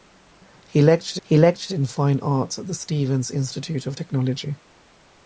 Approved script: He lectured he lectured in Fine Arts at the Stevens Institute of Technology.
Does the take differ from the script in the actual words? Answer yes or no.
no